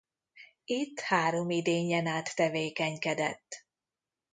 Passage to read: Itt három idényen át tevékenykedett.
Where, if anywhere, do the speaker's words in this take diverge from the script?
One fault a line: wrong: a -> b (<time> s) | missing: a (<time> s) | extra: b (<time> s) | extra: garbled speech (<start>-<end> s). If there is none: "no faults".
no faults